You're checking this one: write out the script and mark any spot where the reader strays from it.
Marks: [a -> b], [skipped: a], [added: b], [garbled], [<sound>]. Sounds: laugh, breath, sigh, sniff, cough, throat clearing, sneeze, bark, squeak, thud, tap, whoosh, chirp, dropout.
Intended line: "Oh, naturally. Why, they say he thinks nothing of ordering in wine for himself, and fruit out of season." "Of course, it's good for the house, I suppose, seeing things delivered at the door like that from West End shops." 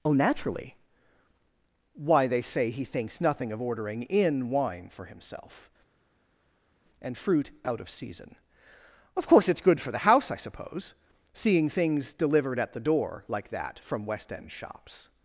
"Oh, naturally. Why, they say he thinks nothing of ordering in wine for himself, and fruit out of season." "Of course, it's good for the house, I suppose, seeing things delivered at the door like that from West End shops."